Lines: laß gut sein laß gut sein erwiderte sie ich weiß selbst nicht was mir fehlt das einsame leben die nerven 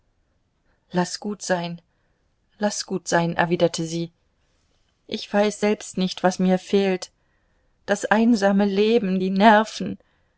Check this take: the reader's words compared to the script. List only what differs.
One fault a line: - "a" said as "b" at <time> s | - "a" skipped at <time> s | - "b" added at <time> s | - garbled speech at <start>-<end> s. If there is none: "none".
none